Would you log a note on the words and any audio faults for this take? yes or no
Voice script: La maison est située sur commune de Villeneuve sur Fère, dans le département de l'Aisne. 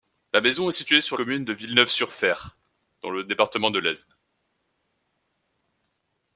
no